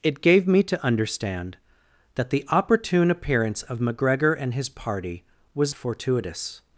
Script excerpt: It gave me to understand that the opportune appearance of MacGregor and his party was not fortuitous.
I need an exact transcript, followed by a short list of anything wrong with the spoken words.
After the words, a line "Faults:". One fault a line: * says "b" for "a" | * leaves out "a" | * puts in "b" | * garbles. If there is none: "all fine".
It gave me to understand that the opportune appearance of MacGregor and his party was fortuitous.
Faults:
* leaves out "not"